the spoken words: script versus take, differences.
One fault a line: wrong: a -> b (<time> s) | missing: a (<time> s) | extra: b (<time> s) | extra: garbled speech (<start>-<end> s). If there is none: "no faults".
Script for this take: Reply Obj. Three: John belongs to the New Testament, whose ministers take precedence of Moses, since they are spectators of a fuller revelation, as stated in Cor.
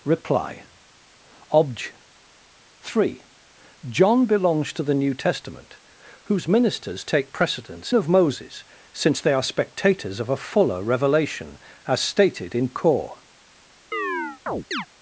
no faults